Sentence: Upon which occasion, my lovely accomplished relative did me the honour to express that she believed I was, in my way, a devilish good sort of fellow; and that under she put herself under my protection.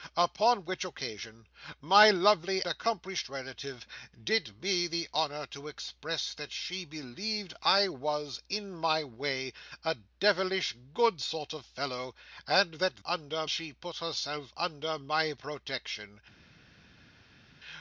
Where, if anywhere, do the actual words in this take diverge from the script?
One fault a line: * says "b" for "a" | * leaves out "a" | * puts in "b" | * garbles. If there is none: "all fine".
all fine